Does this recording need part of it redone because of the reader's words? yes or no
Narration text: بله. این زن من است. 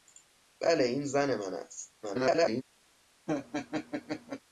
yes